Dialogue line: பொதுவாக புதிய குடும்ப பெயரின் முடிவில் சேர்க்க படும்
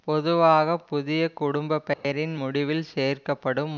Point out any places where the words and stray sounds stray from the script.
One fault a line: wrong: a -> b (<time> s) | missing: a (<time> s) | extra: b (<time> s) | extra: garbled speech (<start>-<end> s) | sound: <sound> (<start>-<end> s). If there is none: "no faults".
sound: dropout (1.9-2.0 s)